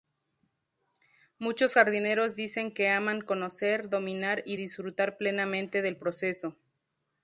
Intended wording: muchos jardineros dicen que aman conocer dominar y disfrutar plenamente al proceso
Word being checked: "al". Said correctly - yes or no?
no